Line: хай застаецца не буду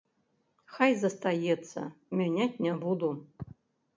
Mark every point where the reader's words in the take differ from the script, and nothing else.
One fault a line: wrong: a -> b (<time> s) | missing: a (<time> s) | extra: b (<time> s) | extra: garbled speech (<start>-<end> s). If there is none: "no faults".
extra: мяняць (2.2 s)